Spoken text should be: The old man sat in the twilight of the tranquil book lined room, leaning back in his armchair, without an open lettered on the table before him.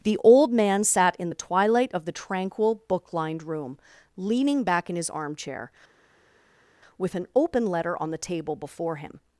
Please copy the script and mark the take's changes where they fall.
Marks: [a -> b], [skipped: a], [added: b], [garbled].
The old man sat in the twilight of the tranquil book lined room, leaning back in his armchair, [without -> with] an open [lettered -> letter] on the table before him.